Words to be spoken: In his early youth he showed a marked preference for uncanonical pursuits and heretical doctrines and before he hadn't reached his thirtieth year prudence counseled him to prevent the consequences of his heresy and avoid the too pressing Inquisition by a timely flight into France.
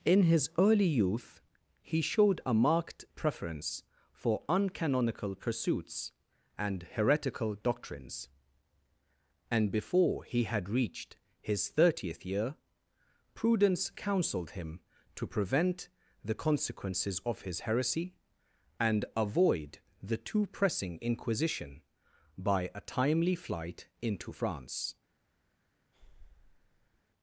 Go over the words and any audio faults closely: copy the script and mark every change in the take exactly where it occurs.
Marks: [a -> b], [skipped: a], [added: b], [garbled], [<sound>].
In his early youth he showed a marked preference for uncanonical pursuits and heretical doctrines and before he [hadn't -> had] reached his thirtieth year prudence counseled him to prevent the consequences of his heresy and avoid the too pressing Inquisition by a timely flight into France. [breath]